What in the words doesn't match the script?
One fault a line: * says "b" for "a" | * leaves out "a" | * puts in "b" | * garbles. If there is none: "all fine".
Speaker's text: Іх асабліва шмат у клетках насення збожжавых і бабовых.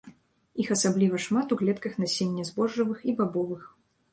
all fine